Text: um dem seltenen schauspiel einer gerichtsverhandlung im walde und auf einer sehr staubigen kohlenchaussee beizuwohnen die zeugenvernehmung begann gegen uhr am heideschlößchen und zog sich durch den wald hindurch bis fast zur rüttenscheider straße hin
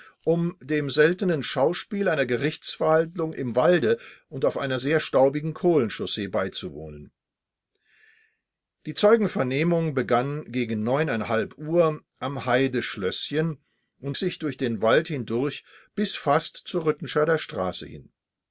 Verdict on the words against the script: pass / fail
fail